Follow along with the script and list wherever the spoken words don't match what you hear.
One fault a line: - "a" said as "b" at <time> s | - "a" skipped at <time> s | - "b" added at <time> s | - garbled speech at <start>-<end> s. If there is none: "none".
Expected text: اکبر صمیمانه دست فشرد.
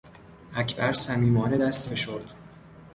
none